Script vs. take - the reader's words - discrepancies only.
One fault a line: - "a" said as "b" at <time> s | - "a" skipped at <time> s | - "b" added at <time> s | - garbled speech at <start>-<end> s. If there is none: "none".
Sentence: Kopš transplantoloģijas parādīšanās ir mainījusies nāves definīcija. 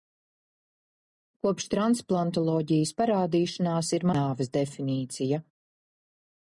- "mainījusies" skipped at 4.1 s